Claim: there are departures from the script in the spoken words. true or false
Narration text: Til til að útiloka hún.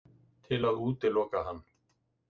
true